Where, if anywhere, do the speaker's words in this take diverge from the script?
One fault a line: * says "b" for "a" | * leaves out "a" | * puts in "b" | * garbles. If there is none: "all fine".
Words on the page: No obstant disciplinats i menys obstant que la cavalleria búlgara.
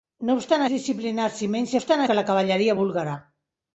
all fine